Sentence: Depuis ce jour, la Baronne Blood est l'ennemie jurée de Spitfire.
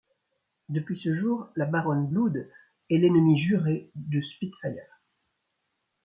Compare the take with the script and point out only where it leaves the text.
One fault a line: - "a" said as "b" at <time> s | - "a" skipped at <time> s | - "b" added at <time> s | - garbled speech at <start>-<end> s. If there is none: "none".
none